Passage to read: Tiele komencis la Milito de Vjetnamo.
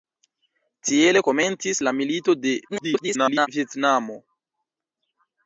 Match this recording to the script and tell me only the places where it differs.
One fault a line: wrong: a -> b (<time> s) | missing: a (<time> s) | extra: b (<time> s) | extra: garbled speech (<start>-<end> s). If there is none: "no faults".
extra: garbled speech (2.7-3.5 s)